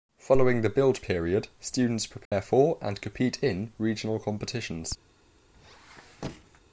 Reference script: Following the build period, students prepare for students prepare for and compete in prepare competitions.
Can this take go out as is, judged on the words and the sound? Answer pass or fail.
fail